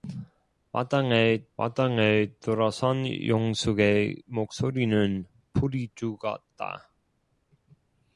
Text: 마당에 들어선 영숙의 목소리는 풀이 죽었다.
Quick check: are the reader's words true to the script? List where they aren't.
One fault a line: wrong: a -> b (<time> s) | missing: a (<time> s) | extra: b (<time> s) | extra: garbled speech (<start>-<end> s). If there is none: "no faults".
extra: 마당에 (1.6 s)